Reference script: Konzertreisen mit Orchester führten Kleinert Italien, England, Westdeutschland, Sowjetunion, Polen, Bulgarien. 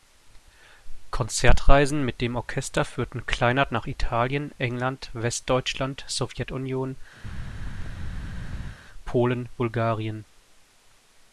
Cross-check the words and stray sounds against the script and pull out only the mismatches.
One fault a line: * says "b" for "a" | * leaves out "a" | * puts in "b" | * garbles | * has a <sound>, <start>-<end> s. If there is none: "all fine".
* puts in "dem"
* puts in "nach"
* has a thud, 7.2-8.8 s